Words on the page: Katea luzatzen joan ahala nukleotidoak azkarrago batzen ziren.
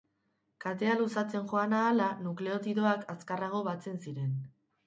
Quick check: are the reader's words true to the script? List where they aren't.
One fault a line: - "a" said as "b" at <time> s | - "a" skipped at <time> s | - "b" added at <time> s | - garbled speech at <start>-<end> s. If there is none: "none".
none